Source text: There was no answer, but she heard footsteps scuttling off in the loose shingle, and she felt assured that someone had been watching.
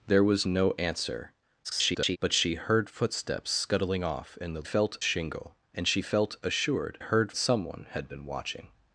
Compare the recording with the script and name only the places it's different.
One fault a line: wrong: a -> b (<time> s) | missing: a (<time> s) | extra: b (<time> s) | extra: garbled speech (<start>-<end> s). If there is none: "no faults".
extra: garbled speech (1.6-2.2 s)
wrong: loose -> felt (4.6 s)
wrong: that -> heard (7.0 s)